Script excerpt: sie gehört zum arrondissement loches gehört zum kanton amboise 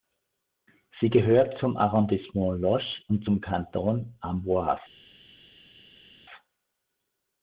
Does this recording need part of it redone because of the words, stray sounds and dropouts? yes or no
yes